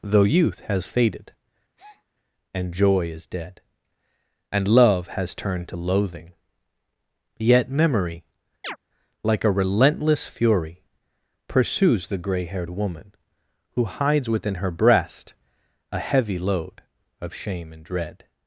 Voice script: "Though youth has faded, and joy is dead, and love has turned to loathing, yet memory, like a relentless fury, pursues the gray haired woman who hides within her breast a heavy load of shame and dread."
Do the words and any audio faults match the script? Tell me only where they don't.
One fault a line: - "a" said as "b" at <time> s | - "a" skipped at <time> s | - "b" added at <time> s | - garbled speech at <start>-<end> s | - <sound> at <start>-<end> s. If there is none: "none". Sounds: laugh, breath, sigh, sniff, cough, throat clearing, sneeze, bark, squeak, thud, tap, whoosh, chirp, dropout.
- breath at 1.8-2.0 s
- chirp at 8.6-8.8 s